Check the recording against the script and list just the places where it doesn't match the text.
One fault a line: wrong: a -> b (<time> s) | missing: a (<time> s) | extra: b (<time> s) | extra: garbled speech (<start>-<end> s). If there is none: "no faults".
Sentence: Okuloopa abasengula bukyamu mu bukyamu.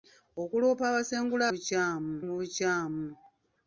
no faults